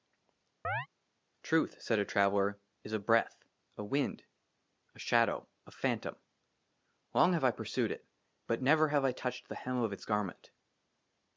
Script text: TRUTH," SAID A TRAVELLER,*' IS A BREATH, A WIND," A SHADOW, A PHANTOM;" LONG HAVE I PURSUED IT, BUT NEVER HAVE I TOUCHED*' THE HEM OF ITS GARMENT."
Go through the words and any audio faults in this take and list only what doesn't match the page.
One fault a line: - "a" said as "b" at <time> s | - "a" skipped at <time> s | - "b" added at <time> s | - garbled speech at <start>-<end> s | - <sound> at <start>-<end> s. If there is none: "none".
- chirp at 0.6-0.9 s